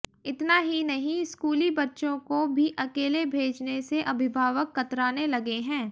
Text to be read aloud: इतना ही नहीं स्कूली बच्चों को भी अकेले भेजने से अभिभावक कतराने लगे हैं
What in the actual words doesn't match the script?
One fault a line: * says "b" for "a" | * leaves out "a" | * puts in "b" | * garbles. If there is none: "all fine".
all fine